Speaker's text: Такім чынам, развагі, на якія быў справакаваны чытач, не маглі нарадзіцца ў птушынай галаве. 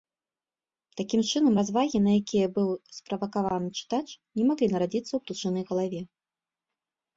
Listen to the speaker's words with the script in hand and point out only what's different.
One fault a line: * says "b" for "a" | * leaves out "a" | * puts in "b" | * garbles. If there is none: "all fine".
all fine